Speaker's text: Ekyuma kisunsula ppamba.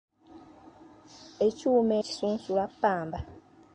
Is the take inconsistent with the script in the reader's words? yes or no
no